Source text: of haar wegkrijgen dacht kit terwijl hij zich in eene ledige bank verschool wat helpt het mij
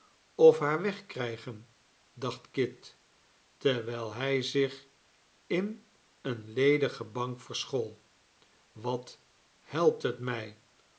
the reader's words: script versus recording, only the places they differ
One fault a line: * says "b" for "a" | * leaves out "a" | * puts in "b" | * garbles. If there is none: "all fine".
all fine